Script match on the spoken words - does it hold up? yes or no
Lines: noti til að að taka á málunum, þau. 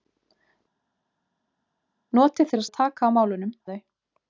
yes